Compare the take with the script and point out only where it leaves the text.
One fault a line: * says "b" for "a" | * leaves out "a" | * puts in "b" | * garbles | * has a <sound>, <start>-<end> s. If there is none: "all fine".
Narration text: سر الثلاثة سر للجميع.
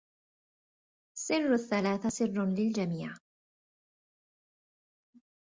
all fine